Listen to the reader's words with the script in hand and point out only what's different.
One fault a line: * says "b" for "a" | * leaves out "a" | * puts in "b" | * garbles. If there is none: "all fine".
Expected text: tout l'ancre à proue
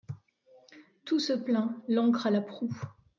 * puts in "se plaint"
* puts in "la"